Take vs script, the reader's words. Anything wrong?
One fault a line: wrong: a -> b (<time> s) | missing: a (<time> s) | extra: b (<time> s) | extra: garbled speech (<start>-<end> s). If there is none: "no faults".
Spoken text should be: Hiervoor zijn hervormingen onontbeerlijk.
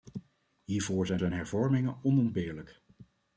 extra: zijn (1.2 s)